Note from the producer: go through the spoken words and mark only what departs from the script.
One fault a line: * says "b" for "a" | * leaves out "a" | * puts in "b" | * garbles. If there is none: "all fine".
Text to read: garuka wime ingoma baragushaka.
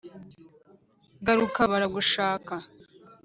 * leaves out "wime ingoma"